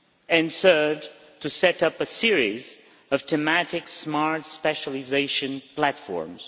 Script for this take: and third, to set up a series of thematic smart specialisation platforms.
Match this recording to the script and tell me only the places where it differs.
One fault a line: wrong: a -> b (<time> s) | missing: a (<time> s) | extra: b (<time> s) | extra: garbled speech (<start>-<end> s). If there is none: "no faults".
no faults